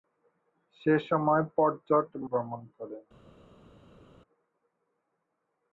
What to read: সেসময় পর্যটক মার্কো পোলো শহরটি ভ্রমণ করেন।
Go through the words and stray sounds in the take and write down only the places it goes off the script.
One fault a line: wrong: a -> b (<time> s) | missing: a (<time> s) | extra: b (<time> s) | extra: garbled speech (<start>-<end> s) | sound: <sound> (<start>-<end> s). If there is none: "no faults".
missing: মার্কো পোলো শহরটি (2.0 s)